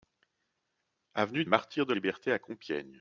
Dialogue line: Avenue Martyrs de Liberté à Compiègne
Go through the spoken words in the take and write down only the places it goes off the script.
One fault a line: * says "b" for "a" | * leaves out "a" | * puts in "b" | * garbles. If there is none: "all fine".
all fine